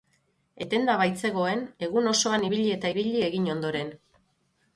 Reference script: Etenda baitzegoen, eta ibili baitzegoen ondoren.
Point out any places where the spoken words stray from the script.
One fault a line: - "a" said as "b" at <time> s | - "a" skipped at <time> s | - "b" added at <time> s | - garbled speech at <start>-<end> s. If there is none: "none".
- "egun osoan ibili" added at 1.9 s
- "baitzegoen" said as "egin" at 3.3 s